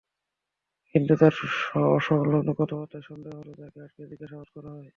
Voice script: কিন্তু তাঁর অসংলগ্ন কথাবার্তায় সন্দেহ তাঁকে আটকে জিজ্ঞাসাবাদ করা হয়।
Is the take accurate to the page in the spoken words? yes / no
no